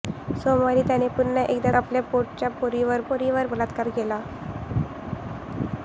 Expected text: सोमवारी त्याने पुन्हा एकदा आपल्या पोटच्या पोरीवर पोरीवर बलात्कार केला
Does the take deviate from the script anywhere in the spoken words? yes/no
no